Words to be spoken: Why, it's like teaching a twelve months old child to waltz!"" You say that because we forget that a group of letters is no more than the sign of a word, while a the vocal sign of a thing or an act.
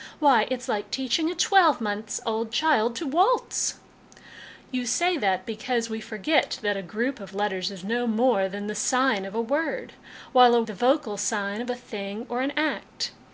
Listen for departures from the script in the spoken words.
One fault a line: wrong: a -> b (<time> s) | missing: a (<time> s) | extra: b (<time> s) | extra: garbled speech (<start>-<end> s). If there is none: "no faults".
no faults